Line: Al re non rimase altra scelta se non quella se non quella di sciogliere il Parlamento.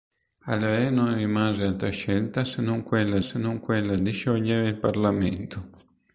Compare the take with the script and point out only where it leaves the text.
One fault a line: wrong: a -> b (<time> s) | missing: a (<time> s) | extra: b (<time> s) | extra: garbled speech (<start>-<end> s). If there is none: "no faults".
no faults